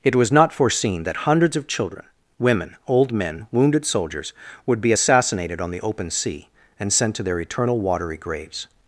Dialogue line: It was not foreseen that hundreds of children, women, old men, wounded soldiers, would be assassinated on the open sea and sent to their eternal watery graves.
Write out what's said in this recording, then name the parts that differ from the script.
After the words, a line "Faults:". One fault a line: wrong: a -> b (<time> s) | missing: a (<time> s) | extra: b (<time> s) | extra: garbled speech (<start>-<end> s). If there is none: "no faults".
It was not foreseen that hundreds of children, women, old men, wounded soldiers, would be assassinated on the open sea and sent to their eternal watery graves.
Faults:
no faults